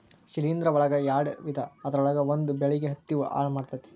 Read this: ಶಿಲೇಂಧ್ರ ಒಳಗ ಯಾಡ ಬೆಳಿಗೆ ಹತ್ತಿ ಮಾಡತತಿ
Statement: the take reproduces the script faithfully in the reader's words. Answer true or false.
false